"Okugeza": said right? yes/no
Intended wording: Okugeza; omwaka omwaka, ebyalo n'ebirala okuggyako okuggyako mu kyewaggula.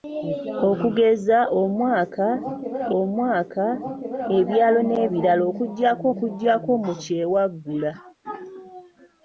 yes